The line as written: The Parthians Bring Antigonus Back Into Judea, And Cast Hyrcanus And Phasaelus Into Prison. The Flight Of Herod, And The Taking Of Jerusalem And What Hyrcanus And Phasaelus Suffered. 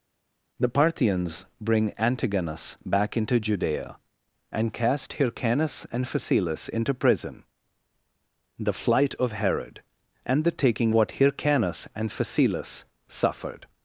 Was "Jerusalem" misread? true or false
true